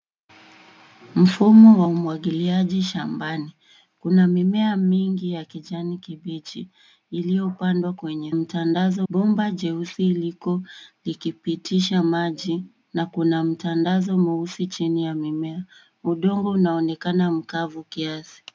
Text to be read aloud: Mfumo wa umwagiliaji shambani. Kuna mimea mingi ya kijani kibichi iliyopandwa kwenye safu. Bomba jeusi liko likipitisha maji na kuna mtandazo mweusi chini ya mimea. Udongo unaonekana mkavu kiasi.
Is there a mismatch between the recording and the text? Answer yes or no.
yes